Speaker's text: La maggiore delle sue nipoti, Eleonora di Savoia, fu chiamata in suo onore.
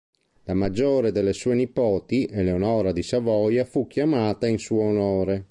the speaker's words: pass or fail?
pass